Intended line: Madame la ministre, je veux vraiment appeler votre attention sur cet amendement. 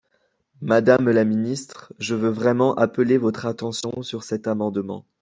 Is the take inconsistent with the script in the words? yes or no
no